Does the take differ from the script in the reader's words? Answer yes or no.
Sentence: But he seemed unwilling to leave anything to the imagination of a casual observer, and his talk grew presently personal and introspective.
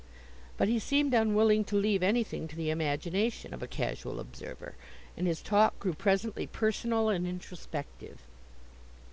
no